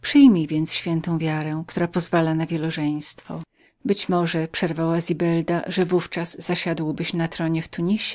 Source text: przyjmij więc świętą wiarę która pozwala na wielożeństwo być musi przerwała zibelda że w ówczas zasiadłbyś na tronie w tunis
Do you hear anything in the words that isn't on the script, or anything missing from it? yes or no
yes